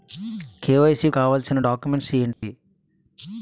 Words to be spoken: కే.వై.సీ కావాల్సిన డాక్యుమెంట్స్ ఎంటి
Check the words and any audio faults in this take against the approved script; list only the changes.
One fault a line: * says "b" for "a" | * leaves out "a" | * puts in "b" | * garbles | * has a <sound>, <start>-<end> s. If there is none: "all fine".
* has a dropout, 2.3-2.4 s